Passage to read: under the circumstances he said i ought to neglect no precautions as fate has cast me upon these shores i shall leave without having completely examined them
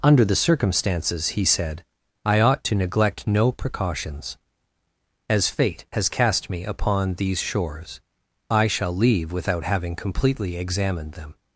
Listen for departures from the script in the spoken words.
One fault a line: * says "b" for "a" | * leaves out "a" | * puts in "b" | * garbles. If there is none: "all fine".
all fine